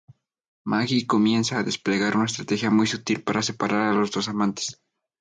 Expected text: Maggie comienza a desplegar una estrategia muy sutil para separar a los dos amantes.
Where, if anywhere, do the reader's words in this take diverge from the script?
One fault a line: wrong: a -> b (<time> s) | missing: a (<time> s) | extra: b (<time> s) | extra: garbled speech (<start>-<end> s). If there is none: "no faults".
no faults